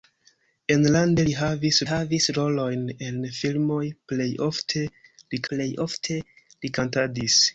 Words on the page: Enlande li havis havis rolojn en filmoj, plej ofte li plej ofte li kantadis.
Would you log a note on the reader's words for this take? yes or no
no